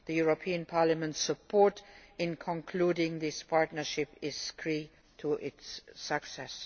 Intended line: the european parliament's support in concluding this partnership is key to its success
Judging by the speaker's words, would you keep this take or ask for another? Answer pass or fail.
pass